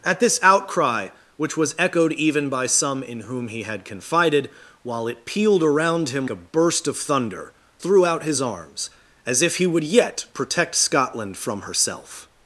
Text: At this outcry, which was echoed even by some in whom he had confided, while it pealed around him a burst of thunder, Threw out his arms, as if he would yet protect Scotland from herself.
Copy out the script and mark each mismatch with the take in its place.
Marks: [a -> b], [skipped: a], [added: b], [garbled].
At this outcry, which was echoed even by some in whom he had confided, while it pealed around him a burst of thunder, Threw out his arms, as if he would yet protect Scotland from herself.